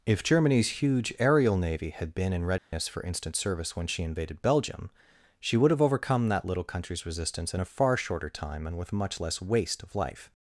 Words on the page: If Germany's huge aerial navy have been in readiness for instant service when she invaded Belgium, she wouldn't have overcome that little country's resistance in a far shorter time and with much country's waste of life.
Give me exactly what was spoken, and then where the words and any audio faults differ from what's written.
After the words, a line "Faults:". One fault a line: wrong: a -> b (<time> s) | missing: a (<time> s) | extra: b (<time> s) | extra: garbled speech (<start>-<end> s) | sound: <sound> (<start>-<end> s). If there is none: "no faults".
If Germany's huge aerial navy had been in readiness for instant service when she invaded Belgium, she would have overcome that little country's resistance in a far shorter time and with much less waste of life.
Faults:
wrong: have -> had (1.9 s)
sound: dropout (2.6-2.7 s)
wrong: wouldn't -> would (5.6 s)
wrong: country's -> less (9.2 s)